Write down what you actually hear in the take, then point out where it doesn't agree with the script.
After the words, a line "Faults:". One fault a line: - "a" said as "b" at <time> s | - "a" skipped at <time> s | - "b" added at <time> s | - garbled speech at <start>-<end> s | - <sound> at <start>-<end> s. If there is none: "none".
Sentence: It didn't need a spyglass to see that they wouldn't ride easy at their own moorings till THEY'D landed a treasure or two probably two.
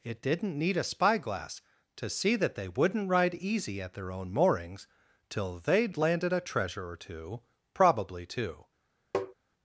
It didn't need a spyglass to see that they wouldn't ride easy at their own moorings till THEY'D landed a treasure or two probably two.
Faults:
- tap at 9.1-9.3 s